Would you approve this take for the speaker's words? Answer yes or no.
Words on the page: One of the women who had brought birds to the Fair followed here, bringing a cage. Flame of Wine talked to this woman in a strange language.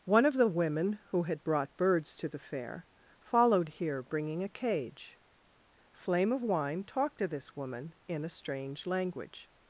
yes